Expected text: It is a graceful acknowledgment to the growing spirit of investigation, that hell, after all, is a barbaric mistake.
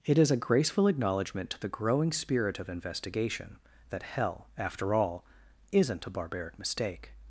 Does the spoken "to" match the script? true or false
true